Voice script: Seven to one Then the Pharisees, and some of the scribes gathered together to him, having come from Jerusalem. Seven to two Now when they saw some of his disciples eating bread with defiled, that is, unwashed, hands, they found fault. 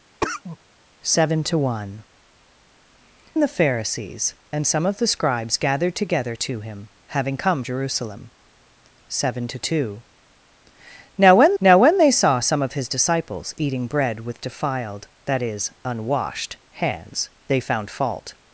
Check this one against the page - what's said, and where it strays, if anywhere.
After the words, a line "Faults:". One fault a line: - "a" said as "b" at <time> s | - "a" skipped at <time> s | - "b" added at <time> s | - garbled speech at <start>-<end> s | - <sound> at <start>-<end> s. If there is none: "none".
Seven to one The Pharisees, and some of the scribes gathered together to him, having come Jerusalem. Seven to two Now when Now when they saw some of his disciples eating bread with defiled, that is, unwashed, hands, they found fault.
Faults:
- cough at 0.2-0.6 s
- "Then" skipped at 2.0 s
- "from" skipped at 7.6 s
- "Now when" added at 11.6 s